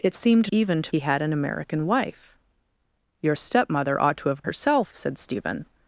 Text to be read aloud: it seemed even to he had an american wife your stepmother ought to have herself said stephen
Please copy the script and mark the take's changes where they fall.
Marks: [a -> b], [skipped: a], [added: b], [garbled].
it seemed even to he had an american wife your stepmother ought to have herself said stephen